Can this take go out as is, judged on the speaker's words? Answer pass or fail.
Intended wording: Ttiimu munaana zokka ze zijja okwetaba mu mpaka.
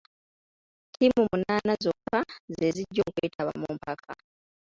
pass